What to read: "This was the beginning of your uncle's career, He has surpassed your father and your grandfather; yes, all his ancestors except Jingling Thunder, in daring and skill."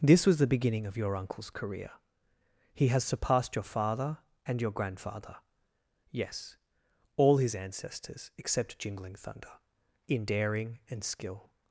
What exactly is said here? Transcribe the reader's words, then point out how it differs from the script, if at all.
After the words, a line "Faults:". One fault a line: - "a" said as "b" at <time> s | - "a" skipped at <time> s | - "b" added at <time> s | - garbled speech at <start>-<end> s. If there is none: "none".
"This was the beginning of your uncle's career, He has surpassed your father and your grandfather; yes, all his ancestors except Jingling Thunder, in daring and skill."
Faults:
none